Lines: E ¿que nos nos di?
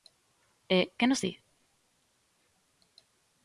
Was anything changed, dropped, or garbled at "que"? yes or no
no